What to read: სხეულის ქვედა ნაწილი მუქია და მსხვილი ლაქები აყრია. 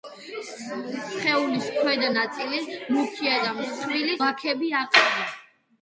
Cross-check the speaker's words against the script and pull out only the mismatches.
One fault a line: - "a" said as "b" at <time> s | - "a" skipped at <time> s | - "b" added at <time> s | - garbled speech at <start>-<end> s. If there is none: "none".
none